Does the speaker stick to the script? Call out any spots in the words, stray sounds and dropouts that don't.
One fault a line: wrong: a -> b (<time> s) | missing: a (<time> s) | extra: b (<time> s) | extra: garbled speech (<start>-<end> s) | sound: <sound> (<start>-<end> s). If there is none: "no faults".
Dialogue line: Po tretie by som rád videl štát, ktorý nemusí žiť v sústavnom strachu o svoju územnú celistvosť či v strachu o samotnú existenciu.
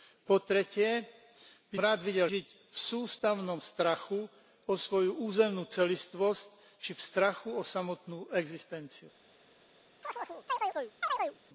missing: som (1.8 s)
missing: štát ktorý nemusí (2.3 s)
sound: chirp (10.0-11.4 s)